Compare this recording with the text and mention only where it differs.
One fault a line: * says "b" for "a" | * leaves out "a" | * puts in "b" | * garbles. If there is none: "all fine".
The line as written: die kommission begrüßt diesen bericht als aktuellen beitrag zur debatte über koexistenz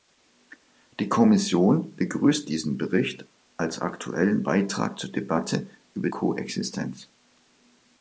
all fine